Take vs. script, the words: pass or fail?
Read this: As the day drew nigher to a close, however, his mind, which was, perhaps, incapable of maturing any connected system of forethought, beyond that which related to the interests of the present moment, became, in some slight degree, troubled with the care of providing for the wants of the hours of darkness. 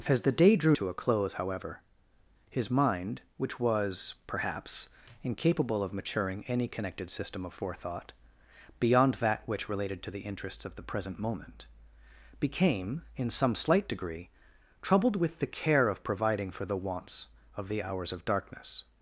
fail